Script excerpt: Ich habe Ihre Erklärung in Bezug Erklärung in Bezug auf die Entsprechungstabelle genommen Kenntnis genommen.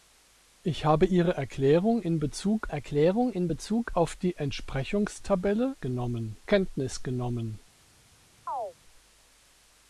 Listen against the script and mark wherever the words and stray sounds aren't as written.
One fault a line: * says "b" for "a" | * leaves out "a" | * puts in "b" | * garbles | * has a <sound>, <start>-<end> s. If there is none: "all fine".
* has a chirp, 8.5-8.7 s